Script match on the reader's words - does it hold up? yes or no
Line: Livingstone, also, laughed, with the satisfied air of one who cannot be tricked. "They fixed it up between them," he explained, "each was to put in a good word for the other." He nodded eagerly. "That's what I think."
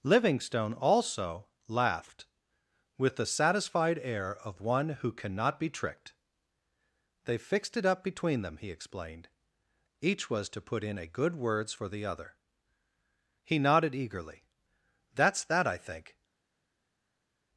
no